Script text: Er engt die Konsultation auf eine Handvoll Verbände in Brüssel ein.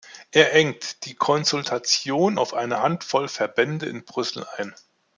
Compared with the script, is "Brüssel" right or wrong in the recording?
right